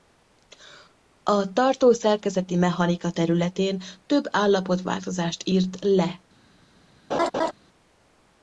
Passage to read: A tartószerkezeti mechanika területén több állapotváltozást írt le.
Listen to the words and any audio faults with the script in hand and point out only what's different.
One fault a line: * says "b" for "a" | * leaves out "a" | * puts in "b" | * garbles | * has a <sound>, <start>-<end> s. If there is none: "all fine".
* has a laugh, 7.1-7.5 s